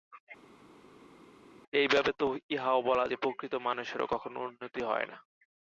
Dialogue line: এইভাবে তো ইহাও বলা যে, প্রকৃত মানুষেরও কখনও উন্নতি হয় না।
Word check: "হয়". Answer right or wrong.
right